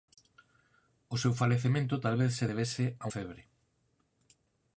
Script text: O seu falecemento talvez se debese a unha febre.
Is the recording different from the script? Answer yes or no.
yes